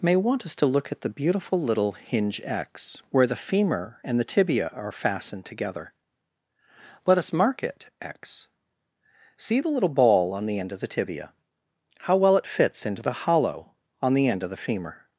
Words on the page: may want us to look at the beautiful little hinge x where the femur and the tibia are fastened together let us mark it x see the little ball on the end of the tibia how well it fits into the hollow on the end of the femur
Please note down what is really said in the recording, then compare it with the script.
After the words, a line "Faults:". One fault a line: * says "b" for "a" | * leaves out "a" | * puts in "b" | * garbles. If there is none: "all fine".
may want us to look at the beautiful little hinge x where the femur and the tibia are fastened together let us mark it x see the little ball on the end of the tibia how well it fits into the hollow on the end of the femur
Faults:
all fine